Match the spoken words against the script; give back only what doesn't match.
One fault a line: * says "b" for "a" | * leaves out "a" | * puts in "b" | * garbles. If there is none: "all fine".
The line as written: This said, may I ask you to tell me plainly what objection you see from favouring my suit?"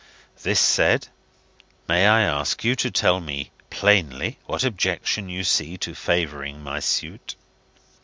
* says "to" for "from"